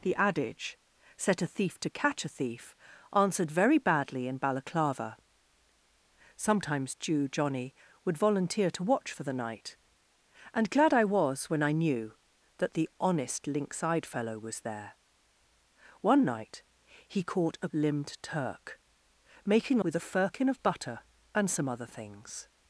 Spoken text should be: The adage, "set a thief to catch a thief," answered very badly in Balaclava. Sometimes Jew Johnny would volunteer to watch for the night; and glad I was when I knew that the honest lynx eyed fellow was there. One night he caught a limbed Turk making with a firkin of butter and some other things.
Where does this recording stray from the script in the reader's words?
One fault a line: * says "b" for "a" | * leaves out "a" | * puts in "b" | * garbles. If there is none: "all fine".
all fine